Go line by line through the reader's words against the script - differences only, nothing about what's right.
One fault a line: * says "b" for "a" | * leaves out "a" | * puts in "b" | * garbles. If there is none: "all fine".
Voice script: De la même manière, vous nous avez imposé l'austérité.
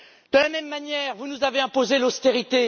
all fine